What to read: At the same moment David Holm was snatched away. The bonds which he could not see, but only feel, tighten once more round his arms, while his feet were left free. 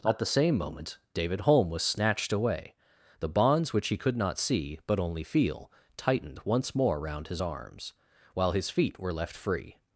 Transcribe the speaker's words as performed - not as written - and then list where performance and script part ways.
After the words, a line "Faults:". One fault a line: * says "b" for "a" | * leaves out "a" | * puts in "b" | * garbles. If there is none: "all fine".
At the same moment David Holm was snatched away. The bonds which he could not see, but only feel, tightened once more round his arms, while his feet were left free.
Faults:
* says "tightened" for "tighten"